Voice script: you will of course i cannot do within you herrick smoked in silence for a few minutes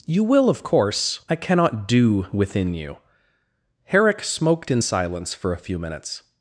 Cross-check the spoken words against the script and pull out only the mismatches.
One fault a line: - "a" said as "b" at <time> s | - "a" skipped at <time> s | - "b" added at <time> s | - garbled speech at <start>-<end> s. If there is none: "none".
none